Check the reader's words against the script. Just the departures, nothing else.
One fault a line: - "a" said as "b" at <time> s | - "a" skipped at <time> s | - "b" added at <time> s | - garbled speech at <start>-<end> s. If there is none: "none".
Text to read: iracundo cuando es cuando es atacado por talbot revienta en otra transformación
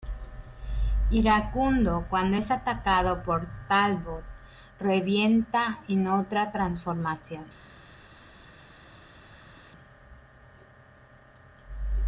- "cuando es" skipped at 2.5 s